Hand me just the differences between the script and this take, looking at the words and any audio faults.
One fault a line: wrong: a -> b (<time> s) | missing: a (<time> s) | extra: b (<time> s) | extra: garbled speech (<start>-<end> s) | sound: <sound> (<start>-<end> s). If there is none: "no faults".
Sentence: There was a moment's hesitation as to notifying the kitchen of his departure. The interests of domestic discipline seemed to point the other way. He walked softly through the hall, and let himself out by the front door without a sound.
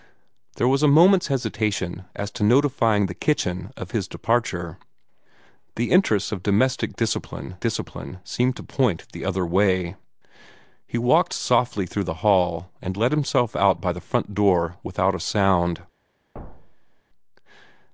extra: discipline (7.6 s)
sound: thud (16.3-17.0 s)